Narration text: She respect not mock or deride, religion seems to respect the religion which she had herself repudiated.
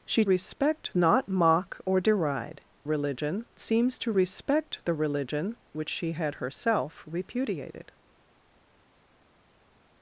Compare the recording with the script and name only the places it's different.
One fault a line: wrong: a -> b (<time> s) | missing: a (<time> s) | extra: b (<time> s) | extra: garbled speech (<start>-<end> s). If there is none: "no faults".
no faults